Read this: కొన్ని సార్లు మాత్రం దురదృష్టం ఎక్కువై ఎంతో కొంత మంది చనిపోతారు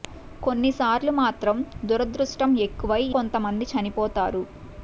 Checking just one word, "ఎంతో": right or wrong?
wrong